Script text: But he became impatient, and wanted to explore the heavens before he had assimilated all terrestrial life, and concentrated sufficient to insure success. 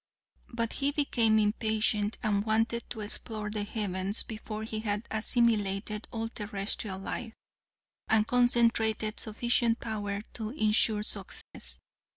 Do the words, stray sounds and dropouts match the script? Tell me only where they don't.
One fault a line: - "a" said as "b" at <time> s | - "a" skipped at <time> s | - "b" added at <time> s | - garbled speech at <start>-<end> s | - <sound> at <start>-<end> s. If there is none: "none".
- "power" added at 9.8 s
- dropout at 11.4-11.5 s